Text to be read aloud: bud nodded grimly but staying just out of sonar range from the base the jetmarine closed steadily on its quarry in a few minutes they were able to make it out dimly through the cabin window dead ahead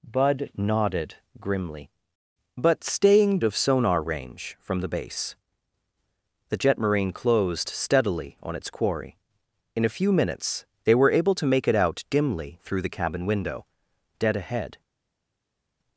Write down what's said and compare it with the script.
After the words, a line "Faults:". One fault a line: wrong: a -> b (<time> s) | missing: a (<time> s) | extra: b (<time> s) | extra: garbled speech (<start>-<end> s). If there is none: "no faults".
bud nodded grimly but staying of sonar range from the base the jetmarine closed steadily on its quarry in a few minutes they were able to make it out dimly through the cabin window dead ahead
Faults:
missing: just out (3.4 s)